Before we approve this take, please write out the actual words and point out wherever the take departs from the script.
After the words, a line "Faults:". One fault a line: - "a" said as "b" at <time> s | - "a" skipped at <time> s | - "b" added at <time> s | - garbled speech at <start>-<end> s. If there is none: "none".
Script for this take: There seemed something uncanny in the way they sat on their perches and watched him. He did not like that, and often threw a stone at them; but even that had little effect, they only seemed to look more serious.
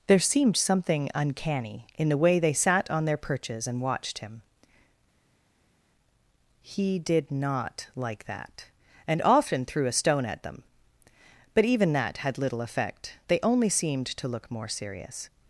There seemed something uncanny in the way they sat on their perches and watched him. He did not like that, and often threw a stone at them; but even that had little effect, they only seemed to look more serious.
Faults:
none